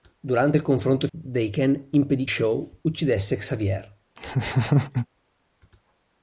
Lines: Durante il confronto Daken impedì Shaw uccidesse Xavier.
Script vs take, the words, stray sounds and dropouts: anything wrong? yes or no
yes